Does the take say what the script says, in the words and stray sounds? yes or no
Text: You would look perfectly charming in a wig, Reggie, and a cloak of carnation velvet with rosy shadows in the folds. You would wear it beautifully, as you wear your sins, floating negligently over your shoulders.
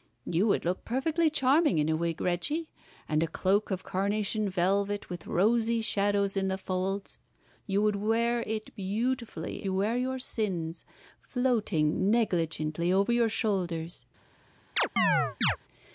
no